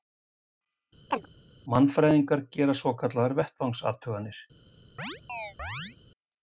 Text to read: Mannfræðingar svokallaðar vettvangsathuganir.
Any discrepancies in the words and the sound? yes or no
yes